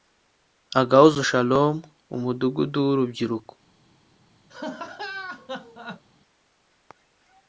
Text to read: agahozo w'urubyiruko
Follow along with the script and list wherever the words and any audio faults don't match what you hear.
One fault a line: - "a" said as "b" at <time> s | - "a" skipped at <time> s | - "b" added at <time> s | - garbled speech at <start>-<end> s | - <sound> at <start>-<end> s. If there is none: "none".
- "shalom umudugudu" added at 1.3 s
- laugh at 4.5-6.0 s